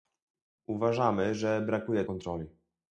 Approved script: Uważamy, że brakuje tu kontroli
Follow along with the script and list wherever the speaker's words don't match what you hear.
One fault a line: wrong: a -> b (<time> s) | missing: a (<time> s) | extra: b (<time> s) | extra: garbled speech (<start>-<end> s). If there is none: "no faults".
missing: tu (2.0 s)